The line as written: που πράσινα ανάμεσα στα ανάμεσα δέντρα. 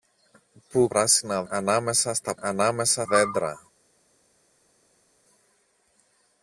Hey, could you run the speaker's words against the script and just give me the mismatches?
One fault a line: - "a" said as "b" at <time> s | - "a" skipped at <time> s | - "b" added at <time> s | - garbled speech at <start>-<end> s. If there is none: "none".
none